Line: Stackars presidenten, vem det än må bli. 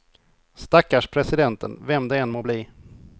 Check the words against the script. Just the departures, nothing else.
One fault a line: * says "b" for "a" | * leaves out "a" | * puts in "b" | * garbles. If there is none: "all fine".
all fine